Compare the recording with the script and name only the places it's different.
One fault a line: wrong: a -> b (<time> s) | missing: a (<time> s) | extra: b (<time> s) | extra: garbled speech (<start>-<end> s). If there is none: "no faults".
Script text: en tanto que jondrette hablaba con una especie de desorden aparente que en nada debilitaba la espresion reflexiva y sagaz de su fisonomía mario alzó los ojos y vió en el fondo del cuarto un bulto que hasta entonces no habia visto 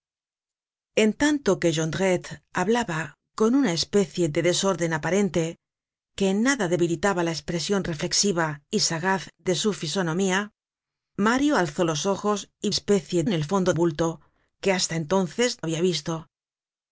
wrong: vió -> especie (12.7 s)
missing: del cuarto un (13.7 s)
missing: no (15.6 s)